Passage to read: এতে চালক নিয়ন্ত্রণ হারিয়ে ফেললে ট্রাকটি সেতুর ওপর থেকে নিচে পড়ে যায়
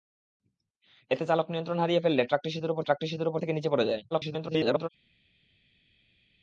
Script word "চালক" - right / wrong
right